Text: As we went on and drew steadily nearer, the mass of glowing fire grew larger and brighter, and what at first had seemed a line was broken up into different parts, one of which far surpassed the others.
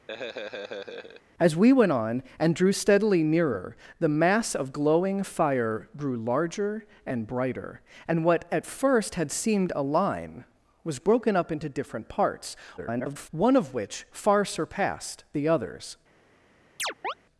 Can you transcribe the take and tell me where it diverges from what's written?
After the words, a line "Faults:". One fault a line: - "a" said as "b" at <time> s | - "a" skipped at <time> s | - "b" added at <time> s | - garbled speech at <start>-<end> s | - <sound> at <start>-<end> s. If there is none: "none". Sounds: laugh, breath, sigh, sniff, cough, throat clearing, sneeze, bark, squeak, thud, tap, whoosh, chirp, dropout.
As we went on and drew steadily nearer, the mass of glowing fire grew larger and brighter, and what at first had seemed a line was broken up into different parts, [garbled] one of which far surpassed the others.
Faults:
- laugh at 0.1-1.2 s
- garbled speech at 12.8-13.3 s
- chirp at 16.8-17.1 s